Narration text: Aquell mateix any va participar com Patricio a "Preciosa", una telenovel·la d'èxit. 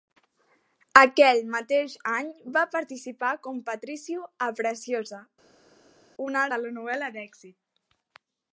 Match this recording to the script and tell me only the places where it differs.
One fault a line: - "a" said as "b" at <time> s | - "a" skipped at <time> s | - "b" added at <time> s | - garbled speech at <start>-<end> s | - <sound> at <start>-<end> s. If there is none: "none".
none